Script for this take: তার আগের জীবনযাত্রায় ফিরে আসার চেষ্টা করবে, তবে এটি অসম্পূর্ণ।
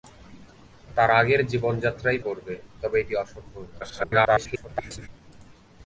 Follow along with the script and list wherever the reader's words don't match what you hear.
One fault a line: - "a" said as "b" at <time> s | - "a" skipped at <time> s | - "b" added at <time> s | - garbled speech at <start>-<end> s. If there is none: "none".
- "ফিরে আসার চেষ্টা" skipped at 2.2 s
- garbled speech at 3.8-5.1 s